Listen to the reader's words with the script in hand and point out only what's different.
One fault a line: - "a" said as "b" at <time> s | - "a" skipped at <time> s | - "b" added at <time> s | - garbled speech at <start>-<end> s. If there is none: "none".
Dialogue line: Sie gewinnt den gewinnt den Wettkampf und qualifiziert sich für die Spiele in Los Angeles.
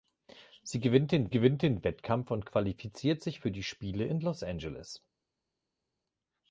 none